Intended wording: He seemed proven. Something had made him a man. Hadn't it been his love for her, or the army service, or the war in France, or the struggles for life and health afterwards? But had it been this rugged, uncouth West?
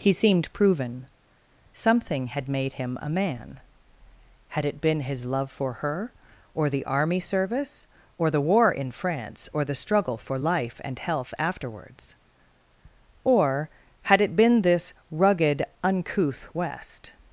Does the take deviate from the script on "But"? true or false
true